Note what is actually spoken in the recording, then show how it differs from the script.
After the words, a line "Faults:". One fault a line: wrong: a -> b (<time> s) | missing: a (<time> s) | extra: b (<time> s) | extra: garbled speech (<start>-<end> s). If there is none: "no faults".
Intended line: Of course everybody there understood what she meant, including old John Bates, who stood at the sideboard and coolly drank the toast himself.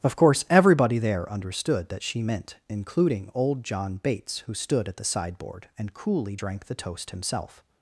Of course everybody there understood that she meant, including old John Bates, who stood at the sideboard and coolly drank the toast himself.
Faults:
wrong: what -> that (1.9 s)